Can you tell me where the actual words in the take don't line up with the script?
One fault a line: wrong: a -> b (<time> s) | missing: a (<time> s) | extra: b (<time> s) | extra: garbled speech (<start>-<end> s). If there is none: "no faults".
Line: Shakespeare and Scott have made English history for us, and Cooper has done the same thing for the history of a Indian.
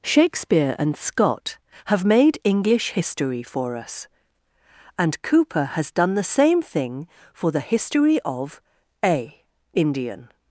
no faults